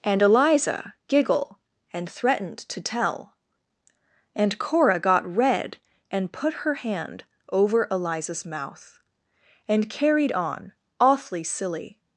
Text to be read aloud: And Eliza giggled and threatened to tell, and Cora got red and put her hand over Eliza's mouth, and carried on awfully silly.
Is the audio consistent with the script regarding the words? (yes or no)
no